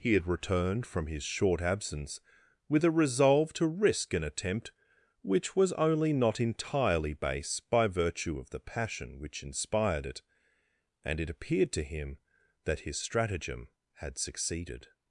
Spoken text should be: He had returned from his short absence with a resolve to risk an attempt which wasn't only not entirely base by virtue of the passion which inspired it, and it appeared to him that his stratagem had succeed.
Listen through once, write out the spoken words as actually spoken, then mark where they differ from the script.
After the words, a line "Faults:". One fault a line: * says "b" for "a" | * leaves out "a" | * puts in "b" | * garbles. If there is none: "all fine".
He had returned from his short absence with a resolve to risk an attempt which was only not entirely base by virtue of the passion which inspired it, and it appeared to him that his stratagem had succeeded.
Faults:
* says "was" for "wasn't"
* says "succeeded" for "succeed"